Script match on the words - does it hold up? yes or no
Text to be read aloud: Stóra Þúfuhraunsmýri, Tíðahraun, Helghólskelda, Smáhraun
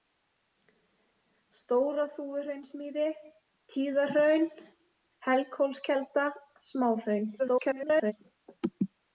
no